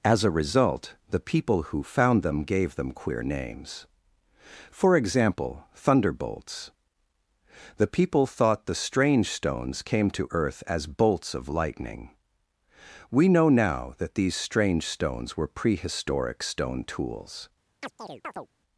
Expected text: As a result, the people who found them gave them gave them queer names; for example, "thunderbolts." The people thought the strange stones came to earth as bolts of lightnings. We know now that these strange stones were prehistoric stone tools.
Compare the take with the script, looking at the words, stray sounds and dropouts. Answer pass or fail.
fail